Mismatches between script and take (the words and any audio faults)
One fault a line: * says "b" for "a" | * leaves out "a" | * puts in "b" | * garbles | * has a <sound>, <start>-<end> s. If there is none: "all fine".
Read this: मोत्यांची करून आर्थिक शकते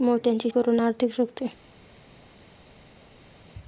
all fine